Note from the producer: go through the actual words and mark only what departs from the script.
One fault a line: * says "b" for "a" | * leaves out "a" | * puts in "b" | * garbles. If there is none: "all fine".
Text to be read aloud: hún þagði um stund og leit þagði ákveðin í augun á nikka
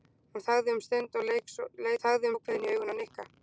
all fine